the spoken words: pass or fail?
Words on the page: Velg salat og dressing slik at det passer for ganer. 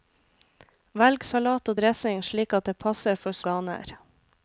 pass